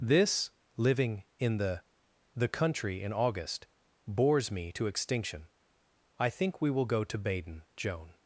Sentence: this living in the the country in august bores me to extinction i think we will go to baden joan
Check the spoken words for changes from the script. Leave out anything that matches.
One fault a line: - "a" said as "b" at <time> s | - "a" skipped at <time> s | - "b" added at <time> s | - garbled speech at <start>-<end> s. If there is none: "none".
none